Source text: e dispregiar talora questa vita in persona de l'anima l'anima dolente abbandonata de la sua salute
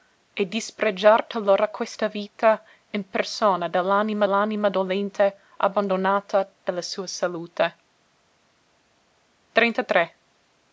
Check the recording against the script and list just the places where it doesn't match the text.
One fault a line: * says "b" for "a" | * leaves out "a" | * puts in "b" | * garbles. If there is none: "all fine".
all fine